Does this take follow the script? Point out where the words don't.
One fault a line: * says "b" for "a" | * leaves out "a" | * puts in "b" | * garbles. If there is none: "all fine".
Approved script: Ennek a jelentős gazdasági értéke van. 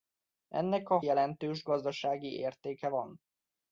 all fine